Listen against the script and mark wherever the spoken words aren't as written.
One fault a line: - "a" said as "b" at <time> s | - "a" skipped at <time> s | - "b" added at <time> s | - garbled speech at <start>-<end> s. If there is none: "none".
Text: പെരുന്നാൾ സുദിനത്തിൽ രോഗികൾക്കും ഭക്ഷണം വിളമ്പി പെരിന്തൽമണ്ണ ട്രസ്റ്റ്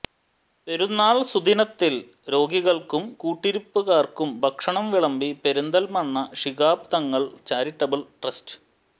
- "കൂട്ടിരിപ്പുകാർക്കും" added at 3.2 s
- "ശിഹാബ് തങ്ങൾ ചാരിറ്റബിൾ" added at 6.3 s